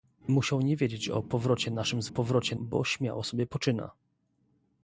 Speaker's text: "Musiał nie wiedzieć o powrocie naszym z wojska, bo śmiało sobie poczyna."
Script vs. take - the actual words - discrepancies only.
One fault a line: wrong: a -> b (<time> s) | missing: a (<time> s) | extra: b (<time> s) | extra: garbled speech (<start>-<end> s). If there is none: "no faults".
wrong: wojska -> powrocie (2.1 s)